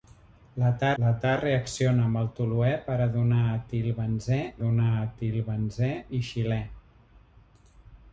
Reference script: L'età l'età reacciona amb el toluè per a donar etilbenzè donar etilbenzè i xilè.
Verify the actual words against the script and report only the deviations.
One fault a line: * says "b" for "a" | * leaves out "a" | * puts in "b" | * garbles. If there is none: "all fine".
all fine